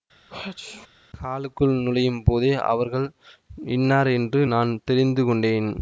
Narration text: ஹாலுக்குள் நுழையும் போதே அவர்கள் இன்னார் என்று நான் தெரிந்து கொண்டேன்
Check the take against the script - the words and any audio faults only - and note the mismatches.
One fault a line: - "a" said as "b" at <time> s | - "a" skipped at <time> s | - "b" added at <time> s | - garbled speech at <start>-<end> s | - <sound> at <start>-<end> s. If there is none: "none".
- sneeze at 0.3-0.9 s